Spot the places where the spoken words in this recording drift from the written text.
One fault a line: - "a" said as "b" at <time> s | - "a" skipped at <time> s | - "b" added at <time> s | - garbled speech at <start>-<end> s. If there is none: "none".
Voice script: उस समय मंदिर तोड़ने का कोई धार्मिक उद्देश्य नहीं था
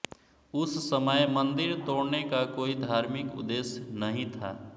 none